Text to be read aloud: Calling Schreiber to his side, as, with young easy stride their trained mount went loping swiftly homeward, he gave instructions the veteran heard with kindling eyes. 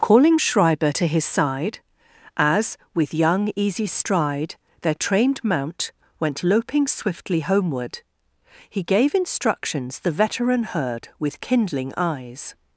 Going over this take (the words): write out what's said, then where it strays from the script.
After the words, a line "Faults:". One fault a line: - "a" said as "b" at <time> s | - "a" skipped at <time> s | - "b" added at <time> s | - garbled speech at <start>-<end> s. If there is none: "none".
Calling Schreiber to his side, as, with young easy stride their trained mount went loping swiftly homeward, he gave instructions the veteran heard with kindling eyes.
Faults:
none